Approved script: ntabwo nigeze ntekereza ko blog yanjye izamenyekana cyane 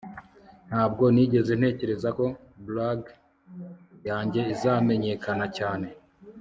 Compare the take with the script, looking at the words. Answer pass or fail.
pass